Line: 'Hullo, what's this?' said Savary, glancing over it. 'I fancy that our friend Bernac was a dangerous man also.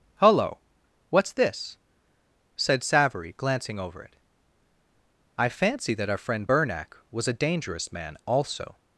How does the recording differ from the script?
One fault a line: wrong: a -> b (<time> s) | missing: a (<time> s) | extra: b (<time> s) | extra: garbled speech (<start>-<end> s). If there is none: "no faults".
no faults